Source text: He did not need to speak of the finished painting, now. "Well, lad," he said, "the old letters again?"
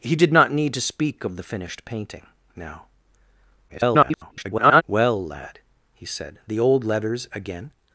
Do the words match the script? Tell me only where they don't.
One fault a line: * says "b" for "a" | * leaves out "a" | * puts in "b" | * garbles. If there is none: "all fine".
* garbles